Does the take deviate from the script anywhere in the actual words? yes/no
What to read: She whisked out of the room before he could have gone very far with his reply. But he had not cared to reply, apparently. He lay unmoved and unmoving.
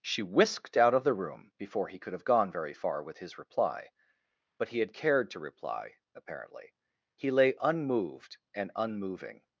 yes